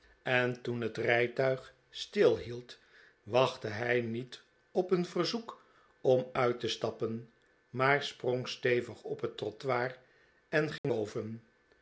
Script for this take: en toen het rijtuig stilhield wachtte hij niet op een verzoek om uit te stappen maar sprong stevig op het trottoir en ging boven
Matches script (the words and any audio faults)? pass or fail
fail